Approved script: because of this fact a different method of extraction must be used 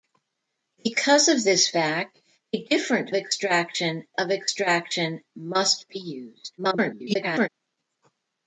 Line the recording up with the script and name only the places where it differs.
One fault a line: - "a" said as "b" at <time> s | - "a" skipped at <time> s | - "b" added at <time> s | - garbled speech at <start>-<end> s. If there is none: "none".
- "method" said as "extraction" at 3.1 s
- garbled speech at 6.6-7.5 s